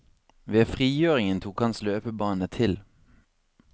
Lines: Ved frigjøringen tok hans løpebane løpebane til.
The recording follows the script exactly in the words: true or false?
false